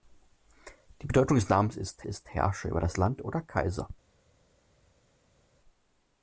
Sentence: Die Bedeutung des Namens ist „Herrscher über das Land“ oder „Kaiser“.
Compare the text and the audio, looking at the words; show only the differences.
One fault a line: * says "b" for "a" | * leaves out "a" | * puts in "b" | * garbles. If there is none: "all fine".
* puts in "ist"